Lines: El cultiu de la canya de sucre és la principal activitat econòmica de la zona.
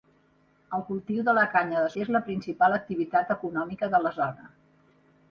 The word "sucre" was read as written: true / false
false